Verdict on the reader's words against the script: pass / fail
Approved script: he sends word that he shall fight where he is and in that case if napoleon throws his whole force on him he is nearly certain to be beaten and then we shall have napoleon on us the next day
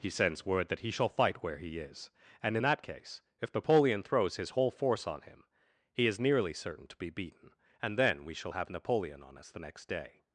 pass